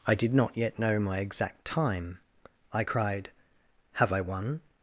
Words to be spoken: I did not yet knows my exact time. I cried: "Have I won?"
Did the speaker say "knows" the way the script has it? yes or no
no